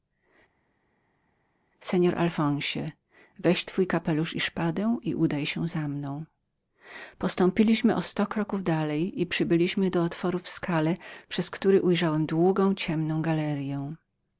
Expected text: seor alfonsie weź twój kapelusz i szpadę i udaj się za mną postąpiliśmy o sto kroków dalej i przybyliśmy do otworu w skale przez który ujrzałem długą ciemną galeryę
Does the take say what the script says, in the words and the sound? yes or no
yes